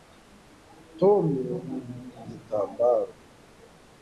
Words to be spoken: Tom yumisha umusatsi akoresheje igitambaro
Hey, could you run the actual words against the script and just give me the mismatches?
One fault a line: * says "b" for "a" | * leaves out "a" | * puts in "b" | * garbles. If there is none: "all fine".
* leaves out "yumisha umusatsi akoresheje"